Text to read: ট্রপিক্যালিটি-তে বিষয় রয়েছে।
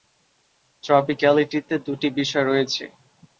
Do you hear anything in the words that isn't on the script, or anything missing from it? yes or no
yes